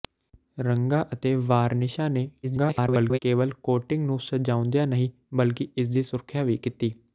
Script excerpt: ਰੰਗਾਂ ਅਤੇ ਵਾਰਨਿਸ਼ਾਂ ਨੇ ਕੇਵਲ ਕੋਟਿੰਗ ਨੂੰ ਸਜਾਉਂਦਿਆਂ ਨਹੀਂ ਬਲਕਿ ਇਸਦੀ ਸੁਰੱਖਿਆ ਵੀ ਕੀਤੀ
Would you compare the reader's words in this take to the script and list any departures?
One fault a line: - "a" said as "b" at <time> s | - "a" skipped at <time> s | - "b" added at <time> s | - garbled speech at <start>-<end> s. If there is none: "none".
- garbled speech at 2.4-3.2 s